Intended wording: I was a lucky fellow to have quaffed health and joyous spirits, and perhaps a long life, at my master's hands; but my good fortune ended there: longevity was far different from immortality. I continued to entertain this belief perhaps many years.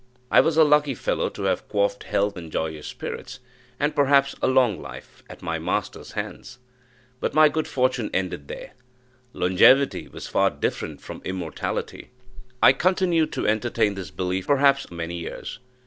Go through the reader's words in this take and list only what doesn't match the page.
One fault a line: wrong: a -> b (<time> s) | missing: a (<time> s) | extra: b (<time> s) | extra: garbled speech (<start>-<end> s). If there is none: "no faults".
no faults